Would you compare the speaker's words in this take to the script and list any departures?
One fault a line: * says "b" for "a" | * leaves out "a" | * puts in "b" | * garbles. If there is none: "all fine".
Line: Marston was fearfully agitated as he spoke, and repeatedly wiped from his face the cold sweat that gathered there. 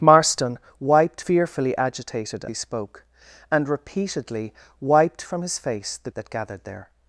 * says "wiped" for "was"
* leaves out "as"
* leaves out "cold sweat"